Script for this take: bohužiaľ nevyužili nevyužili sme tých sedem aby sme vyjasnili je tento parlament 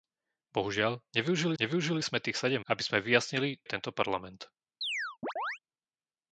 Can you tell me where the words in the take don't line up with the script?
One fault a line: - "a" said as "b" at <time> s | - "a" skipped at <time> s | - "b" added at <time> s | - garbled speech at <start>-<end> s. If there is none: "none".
none